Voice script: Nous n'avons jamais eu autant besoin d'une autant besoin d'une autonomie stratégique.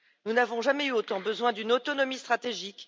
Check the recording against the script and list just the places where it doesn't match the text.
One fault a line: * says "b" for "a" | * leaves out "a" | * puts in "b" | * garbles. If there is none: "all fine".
* leaves out "autant besoin d'une"